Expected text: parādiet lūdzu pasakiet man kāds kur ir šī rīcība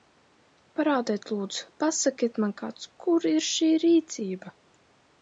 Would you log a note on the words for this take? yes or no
no